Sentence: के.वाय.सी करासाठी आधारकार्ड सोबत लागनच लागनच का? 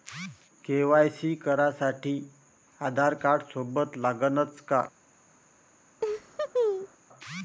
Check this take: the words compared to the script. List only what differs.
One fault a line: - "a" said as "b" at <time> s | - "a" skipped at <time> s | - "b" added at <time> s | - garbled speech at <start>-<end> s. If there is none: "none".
- "लागनच" skipped at 4.6 s